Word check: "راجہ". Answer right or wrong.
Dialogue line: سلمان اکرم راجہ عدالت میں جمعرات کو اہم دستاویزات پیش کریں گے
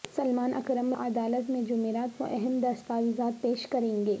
wrong